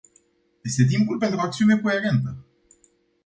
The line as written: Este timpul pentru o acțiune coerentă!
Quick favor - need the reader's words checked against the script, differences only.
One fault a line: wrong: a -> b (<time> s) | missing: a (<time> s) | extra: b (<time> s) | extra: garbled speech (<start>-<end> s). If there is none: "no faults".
no faults